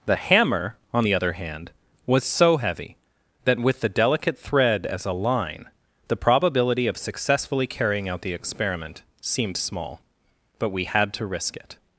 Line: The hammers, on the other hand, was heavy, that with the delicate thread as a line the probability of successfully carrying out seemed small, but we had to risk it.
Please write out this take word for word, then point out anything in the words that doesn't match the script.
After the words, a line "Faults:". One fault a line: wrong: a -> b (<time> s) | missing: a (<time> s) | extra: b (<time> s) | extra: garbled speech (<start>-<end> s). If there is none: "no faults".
The hammer, on the other hand, was so heavy, that with the delicate thread as a line the probability of successfully carrying out the experiment seemed small, but we had to risk it.
Faults:
wrong: hammers -> hammer (0.1 s)
extra: so (2.2 s)
extra: the experiment (8.2 s)